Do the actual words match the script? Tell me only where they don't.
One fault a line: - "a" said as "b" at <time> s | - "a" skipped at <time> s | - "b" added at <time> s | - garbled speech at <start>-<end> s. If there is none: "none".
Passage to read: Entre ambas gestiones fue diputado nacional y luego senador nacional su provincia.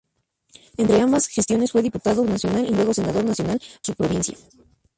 none